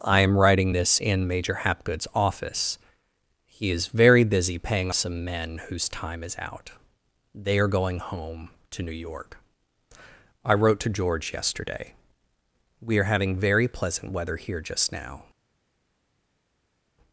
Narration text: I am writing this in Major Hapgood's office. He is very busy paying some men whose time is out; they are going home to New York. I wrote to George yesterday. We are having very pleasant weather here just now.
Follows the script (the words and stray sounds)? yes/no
yes